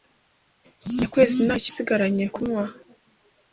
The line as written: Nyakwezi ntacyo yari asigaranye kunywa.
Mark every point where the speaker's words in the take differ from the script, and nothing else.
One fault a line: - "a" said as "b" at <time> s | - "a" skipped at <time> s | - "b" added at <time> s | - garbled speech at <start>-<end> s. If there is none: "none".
- "yari" skipped at 1.7 s